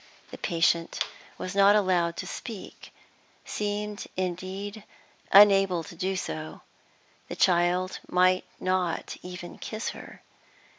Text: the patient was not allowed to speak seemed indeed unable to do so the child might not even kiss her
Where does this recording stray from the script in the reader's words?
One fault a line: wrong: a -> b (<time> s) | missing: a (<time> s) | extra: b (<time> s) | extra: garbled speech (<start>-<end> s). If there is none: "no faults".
no faults